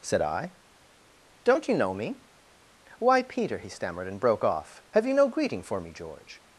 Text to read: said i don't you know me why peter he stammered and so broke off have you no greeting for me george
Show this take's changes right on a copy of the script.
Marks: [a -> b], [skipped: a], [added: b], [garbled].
said i don't you know me why peter he stammered and [skipped: so] broke off have you no greeting for me george